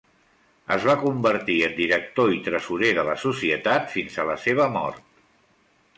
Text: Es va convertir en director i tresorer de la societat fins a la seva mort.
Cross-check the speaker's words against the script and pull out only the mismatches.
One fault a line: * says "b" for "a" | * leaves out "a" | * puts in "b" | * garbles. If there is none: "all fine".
all fine